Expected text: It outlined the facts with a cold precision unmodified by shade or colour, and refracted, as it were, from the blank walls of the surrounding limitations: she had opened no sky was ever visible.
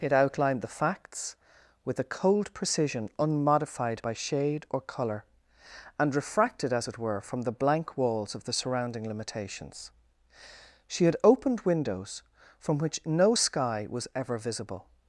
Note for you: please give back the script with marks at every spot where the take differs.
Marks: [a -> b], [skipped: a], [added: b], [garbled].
It outlined the facts with a cold precision unmodified by shade or colour, and refracted, as it were, from the blank walls of the surrounding limitations: she had opened [added: windows from which] no sky was ever visible.